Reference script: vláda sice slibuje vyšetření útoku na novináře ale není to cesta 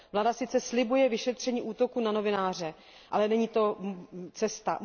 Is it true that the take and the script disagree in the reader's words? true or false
false